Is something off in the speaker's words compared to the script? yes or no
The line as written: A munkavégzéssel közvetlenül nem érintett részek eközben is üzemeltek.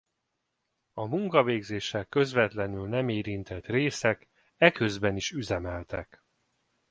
no